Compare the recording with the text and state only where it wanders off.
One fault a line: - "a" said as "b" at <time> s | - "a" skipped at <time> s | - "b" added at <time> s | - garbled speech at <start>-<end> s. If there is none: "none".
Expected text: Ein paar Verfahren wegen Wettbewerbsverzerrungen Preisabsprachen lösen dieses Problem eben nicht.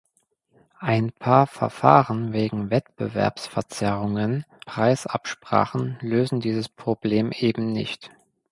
none